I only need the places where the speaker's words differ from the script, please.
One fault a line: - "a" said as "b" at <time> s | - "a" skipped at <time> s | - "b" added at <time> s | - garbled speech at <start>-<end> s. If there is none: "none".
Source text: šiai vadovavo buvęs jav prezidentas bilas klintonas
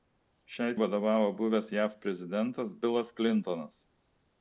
none